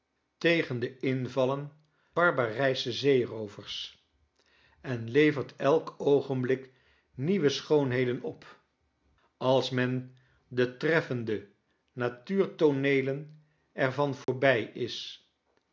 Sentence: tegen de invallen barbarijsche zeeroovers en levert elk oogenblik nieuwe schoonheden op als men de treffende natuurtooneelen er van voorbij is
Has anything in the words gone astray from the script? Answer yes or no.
no